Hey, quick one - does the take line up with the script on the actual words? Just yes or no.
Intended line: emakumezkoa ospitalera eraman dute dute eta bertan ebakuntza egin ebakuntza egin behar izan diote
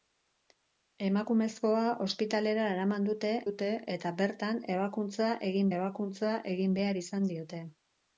yes